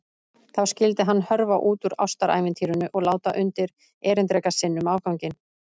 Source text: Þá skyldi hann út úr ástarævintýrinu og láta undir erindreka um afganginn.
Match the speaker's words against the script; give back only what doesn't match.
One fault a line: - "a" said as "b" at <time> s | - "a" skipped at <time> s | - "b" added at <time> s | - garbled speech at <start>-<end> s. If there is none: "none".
- "hörfa" added at 1.3 s
- "sinn" added at 4.6 s